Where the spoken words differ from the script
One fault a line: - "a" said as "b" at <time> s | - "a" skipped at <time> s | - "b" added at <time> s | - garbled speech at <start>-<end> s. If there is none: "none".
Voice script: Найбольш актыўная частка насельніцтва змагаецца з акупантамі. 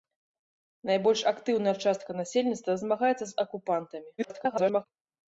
- garbled speech at 4.2-4.9 s